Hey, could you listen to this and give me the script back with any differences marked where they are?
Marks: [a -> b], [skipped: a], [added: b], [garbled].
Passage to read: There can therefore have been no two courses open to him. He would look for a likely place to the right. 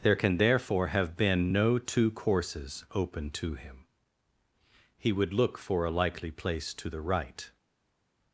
There can therefore have been no two courses open to him. He would look for a likely place to the right.